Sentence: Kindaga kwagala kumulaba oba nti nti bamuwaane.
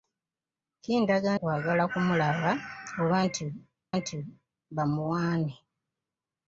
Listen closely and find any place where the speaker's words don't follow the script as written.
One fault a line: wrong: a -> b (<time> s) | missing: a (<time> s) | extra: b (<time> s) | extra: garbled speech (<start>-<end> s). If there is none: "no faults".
no faults